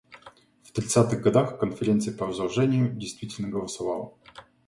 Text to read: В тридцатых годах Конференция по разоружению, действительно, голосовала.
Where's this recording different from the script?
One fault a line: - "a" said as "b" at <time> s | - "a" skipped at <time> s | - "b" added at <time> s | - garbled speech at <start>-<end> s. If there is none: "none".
none